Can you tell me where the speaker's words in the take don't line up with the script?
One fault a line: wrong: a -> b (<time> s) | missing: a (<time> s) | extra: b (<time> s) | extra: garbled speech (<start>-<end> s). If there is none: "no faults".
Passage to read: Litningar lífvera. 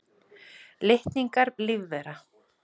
no faults